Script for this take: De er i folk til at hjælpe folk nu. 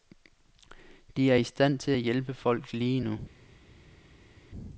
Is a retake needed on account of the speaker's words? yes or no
yes